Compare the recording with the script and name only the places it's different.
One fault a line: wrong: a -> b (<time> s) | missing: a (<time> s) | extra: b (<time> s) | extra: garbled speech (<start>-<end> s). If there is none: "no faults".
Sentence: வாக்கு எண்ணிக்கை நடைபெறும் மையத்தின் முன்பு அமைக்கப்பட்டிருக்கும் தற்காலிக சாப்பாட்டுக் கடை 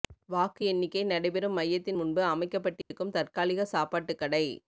no faults